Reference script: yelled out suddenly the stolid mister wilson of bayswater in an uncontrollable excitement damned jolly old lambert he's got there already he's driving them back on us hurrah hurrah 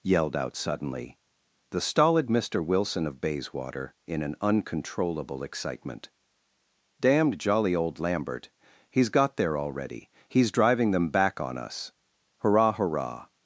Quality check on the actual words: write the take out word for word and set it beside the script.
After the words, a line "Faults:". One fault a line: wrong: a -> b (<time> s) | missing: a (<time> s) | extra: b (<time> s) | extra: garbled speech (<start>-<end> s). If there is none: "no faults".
yelled out suddenly the stolid mister wilson of bayswater in an uncontrollable excitement damned jolly old lambert he's got there already he's driving them back on us hurrah hurrah
Faults:
no faults